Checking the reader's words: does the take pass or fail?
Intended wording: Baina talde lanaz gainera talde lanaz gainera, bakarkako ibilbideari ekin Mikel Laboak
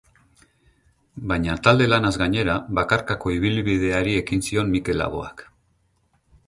fail